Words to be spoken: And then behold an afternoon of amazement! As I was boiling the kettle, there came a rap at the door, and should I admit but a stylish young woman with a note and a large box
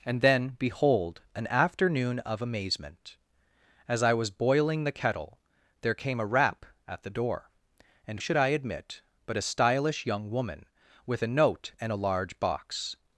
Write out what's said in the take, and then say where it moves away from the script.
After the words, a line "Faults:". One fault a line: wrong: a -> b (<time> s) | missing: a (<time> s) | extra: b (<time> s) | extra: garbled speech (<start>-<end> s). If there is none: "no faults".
And then behold an afternoon of amazement! As I was boiling the kettle, there came a rap at the door, and should I admit but a stylish young woman with a note and a large box
Faults:
no faults